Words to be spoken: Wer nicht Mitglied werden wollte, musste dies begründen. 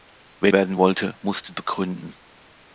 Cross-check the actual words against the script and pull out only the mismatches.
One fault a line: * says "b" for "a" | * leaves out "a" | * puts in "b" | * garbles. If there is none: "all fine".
* leaves out "nicht Mitglied"
* leaves out "dies"